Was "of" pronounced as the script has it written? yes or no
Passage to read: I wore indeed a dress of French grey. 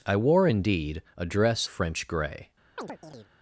no